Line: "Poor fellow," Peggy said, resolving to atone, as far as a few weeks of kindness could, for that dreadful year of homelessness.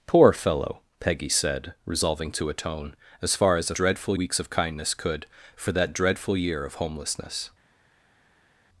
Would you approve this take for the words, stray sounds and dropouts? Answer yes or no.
no